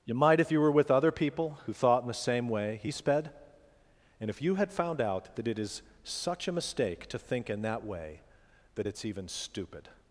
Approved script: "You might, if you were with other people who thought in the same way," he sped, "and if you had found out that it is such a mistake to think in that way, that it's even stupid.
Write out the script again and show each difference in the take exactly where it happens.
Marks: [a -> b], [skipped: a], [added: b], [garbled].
"You might, if you were with other people who thought in the same way," he sped, "and if you had found out that it is such a mistake to think in that way, that it's even stupid.